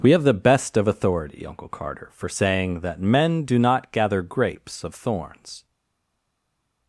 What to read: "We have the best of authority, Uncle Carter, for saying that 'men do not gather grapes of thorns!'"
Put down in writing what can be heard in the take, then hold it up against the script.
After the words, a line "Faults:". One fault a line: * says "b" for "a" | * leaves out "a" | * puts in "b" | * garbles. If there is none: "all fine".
"We have the best of authority, Uncle Carter, for saying that 'men do not gather grapes of thorns!'"
Faults:
all fine